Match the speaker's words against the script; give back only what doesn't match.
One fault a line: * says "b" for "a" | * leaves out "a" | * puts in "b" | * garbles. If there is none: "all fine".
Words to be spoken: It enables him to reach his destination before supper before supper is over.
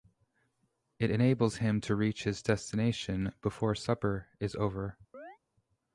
* leaves out "before supper"